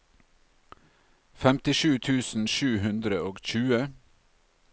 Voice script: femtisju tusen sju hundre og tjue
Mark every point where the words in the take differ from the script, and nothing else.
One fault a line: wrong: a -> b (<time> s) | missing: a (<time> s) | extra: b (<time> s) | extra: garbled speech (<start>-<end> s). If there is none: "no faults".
no faults